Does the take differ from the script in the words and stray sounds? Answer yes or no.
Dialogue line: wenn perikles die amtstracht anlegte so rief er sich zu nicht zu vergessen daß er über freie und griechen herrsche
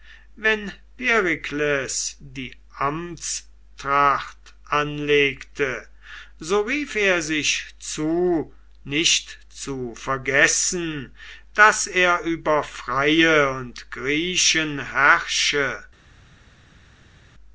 no